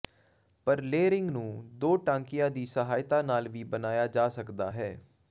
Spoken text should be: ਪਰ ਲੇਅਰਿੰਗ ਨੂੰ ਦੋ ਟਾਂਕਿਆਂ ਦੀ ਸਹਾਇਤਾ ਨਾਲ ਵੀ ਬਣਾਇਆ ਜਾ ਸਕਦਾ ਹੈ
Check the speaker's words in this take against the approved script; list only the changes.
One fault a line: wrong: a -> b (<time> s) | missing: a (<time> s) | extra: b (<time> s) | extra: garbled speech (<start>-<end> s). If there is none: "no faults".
no faults